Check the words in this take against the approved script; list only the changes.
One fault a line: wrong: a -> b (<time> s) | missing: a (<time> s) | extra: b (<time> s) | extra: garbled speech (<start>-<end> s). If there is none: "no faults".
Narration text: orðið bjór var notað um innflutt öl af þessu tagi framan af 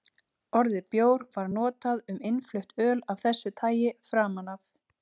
no faults